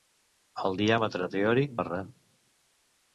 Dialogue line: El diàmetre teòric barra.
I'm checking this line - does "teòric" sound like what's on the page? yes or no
yes